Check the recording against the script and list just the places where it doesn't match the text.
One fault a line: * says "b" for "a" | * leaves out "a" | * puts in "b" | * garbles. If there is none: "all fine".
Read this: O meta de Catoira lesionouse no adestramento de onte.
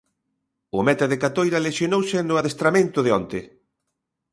all fine